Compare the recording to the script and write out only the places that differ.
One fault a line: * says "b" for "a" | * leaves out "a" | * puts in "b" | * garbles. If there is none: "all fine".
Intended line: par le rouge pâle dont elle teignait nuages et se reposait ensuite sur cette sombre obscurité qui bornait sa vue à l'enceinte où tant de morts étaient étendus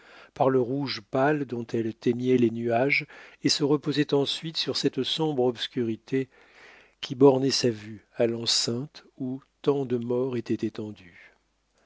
* puts in "les"